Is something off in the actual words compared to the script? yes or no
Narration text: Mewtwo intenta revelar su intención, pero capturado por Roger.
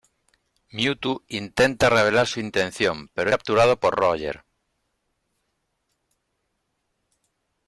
no